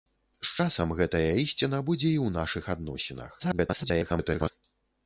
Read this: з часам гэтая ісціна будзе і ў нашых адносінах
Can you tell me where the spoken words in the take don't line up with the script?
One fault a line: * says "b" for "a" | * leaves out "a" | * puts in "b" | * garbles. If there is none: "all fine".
* garbles